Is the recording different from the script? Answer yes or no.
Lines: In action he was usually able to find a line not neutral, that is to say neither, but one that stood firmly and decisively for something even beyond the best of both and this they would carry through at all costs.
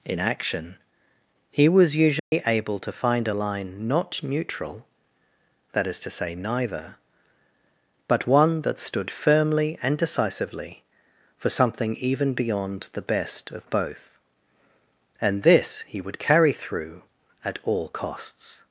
yes